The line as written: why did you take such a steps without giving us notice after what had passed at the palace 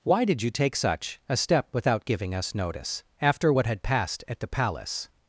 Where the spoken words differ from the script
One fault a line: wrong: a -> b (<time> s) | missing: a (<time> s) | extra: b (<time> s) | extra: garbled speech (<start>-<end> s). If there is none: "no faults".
wrong: steps -> step (1.4 s)